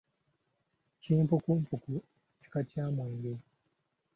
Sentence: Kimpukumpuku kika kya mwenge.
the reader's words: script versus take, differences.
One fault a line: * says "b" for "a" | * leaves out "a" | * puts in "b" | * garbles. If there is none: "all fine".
all fine